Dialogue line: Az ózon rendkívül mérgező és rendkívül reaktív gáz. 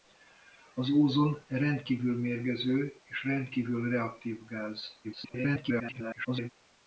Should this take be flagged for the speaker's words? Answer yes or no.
yes